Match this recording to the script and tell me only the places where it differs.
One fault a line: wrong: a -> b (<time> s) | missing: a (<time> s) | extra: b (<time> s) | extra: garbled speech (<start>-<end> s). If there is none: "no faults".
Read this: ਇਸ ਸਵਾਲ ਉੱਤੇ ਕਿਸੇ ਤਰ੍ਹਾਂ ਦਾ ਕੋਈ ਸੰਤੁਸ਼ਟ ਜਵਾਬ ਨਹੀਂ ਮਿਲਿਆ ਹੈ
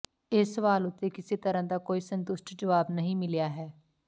no faults